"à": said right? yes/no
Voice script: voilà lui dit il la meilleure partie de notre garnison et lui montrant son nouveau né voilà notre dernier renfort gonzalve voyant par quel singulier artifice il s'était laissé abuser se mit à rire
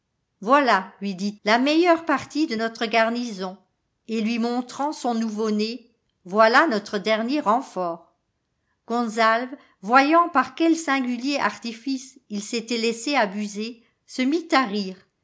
yes